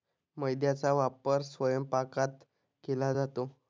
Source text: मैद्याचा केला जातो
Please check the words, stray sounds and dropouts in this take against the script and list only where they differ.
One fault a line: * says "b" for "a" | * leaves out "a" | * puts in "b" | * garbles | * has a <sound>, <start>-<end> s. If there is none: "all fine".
* puts in "वापर स्वयंपाकात"